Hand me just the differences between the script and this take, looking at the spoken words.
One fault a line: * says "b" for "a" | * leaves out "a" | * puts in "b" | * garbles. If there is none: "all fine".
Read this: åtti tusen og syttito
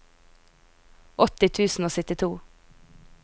all fine